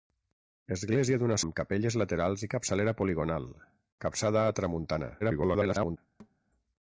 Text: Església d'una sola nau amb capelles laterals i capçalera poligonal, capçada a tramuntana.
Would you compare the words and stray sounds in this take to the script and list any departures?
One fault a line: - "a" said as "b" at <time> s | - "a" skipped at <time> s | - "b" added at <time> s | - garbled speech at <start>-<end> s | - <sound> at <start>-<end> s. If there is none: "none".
- "sola nau" skipped at 1.4 s
- garbled speech at 5.2-6.0 s
- thud at 6.2-6.4 s